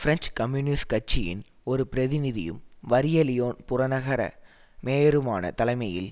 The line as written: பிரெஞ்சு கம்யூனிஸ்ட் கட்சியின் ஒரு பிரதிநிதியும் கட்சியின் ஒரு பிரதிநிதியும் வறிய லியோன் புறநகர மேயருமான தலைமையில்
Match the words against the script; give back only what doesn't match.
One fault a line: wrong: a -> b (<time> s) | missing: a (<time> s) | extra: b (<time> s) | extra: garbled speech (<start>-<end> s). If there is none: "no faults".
missing: கட்சியின் ஒரு பிரதிநிதியும் (2.6 s)